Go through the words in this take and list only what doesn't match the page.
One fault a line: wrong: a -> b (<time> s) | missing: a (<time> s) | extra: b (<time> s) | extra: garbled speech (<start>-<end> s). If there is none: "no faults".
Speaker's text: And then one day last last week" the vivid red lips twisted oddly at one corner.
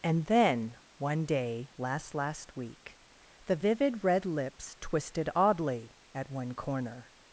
no faults